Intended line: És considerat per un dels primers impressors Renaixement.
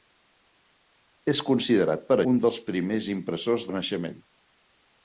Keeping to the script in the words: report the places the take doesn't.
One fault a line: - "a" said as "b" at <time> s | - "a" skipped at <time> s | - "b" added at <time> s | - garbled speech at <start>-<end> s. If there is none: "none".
none